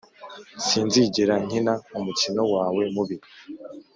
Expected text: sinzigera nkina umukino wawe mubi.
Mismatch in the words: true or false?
false